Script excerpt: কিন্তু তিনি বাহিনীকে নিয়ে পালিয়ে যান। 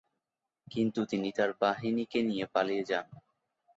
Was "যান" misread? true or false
false